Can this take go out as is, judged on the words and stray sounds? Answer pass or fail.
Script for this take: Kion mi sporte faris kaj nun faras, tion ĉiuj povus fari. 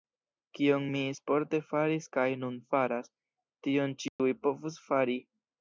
fail